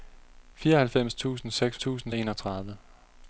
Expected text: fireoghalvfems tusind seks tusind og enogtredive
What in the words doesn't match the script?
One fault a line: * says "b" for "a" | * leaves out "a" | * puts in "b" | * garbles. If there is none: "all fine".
all fine